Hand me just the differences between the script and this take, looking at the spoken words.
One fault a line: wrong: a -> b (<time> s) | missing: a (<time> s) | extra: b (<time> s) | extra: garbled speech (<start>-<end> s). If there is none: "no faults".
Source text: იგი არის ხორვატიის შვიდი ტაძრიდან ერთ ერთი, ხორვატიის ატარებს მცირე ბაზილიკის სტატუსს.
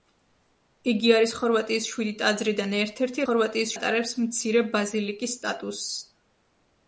no faults